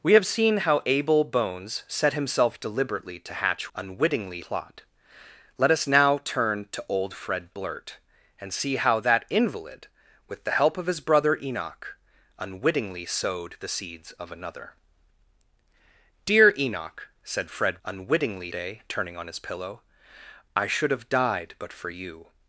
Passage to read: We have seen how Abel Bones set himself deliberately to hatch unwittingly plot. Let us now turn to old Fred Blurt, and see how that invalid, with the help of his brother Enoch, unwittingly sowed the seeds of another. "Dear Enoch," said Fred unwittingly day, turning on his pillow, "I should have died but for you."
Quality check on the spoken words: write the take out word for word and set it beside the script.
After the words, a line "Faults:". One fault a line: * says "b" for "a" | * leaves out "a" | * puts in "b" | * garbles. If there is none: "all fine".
We have seen how Abel Bones set himself deliberately to hatch unwittingly plot. Let us now turn to old Fred Blurt, and see how that invalid, with the help of his brother Enoch, unwittingly sowed the seeds of another. "Dear Enoch," said Fred unwittingly day, turning on his pillow, "I should have died but for you."
Faults:
all fine